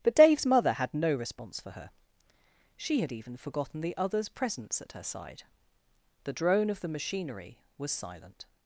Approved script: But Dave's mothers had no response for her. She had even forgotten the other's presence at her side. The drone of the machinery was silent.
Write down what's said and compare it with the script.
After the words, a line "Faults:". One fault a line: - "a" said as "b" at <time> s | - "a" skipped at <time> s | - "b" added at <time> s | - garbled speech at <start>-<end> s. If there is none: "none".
But Dave's mother had no response for her. She had even forgotten the other's presence at her side. The drone of the machinery was silent.
Faults:
- "mothers" said as "mother" at 0.5 s